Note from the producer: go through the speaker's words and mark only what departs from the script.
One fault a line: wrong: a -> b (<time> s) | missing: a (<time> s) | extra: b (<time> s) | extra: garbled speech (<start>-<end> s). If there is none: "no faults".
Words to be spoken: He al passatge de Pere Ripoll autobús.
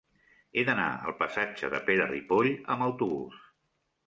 extra: d'anar (0.7 s)
extra: amb (2.8 s)